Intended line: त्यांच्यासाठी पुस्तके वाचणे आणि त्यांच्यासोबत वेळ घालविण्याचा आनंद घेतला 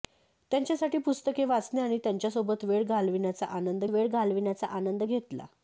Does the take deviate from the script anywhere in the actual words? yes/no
yes